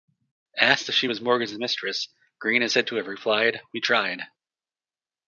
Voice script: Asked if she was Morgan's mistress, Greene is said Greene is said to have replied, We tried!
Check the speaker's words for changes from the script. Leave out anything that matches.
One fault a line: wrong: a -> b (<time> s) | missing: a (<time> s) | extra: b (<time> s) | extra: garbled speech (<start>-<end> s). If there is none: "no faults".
missing: Greene is said (2.9 s)